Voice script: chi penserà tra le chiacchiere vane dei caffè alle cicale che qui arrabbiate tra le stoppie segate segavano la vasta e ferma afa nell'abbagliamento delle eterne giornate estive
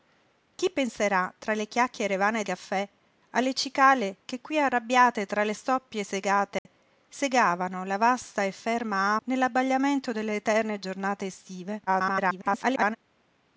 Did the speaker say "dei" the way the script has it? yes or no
no